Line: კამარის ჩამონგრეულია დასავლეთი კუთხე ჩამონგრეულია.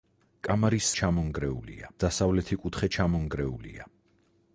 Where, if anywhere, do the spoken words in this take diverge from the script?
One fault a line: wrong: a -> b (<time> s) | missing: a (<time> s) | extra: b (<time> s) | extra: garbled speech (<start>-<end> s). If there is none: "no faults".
no faults